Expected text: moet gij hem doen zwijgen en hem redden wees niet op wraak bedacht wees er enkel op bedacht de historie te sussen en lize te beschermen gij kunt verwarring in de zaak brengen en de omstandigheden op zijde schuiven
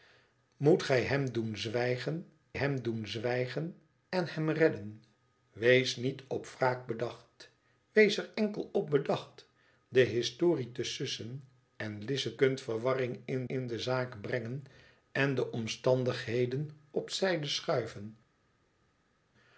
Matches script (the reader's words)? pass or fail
fail